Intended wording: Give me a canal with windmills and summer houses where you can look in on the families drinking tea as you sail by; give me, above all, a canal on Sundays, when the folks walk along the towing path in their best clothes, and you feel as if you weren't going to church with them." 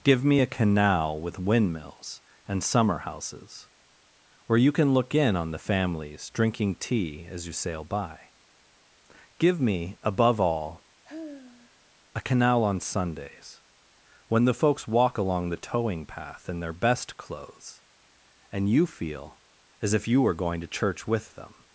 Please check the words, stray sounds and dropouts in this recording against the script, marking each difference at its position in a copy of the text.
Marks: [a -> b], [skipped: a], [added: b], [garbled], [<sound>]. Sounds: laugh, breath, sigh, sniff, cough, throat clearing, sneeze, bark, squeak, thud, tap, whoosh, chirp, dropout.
Give me a canal with windmills and summer houses where you can look in on the families drinking tea as you sail by; give me, above all, [sigh] a canal on Sundays, when the folks walk along the towing path in their best clothes, and you feel as if you [weren't -> were] going to church with them."